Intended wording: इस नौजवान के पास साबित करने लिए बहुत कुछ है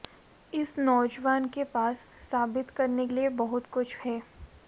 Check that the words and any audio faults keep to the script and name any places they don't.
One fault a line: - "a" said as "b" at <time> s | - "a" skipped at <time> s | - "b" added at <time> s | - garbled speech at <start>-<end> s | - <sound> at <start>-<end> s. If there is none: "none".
none